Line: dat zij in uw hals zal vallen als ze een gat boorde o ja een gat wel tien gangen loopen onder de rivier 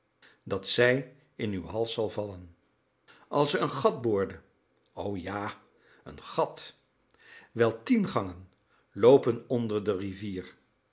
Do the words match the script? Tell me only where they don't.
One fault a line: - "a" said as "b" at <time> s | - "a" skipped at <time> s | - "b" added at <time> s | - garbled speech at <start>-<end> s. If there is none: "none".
none